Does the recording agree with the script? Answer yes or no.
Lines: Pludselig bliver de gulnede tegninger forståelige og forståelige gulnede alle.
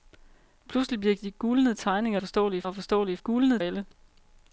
yes